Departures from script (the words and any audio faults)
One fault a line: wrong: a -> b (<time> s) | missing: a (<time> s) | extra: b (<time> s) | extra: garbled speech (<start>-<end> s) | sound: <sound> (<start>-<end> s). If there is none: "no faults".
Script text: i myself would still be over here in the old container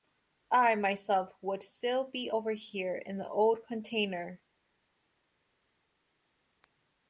no faults